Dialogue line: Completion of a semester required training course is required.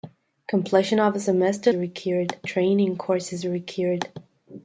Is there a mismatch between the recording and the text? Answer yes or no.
no